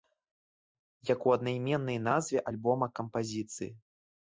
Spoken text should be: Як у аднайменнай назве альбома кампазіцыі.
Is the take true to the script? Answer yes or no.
yes